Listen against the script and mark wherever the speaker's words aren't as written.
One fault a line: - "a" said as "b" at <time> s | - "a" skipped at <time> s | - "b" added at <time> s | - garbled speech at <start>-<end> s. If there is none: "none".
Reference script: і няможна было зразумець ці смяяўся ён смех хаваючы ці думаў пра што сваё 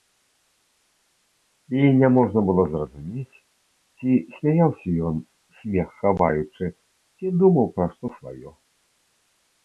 none